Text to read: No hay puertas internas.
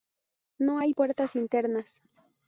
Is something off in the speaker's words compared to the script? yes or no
no